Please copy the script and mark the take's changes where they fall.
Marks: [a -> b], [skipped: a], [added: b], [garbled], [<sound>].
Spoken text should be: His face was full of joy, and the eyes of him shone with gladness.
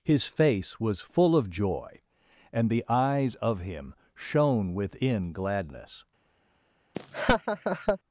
His face was full of joy, and the eyes of him shone [with -> within] gladness. [laugh]